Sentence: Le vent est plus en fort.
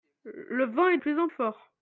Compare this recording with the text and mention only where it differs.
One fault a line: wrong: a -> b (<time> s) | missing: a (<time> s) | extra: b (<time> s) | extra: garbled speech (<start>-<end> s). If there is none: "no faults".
no faults